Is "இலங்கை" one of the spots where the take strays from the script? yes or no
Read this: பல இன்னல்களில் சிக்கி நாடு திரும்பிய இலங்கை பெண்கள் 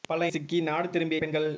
yes